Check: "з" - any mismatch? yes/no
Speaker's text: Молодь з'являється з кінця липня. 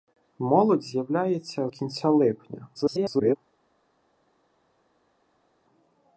yes